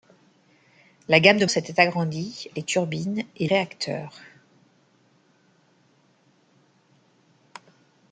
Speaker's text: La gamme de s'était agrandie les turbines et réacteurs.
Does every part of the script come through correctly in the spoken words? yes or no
yes